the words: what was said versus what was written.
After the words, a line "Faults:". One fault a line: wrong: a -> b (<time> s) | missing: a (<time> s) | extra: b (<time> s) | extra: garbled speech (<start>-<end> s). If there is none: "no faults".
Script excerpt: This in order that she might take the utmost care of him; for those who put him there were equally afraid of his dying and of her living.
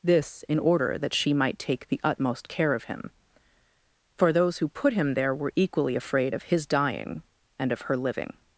This in order that she might take the utmost care of him; for those who put him there were equally afraid of his dying and of her living.
Faults:
no faults